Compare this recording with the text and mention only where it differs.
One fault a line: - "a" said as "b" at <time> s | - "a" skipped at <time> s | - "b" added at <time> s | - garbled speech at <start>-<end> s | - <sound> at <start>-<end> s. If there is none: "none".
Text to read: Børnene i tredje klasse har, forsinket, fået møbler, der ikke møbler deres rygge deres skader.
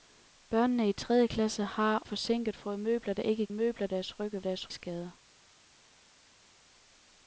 none